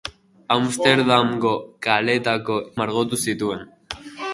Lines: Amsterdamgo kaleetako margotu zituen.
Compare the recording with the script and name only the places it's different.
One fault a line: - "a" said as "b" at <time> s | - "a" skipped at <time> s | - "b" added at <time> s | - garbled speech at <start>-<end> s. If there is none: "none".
none